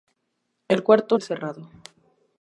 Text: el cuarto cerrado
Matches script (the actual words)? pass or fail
pass